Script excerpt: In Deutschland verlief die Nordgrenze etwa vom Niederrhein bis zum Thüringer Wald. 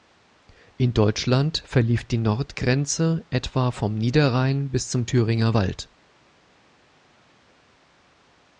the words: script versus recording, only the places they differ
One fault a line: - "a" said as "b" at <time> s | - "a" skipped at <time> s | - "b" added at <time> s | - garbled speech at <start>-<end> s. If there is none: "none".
none